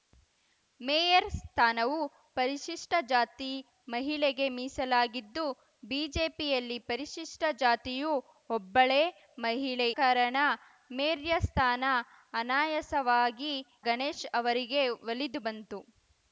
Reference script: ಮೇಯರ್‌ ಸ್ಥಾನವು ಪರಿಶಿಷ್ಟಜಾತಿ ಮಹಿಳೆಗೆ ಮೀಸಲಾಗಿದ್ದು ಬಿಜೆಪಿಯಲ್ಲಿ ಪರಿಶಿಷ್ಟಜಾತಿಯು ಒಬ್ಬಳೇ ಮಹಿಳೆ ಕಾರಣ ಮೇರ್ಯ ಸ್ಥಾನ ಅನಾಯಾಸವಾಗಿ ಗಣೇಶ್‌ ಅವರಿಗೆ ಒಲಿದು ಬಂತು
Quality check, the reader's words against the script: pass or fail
pass